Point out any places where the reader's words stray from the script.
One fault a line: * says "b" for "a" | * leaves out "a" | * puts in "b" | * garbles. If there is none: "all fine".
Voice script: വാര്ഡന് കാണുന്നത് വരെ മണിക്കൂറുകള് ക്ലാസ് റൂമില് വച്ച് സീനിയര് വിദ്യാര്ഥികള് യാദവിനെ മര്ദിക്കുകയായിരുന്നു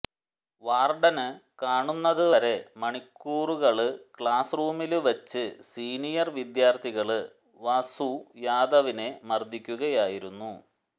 * puts in "വാസു"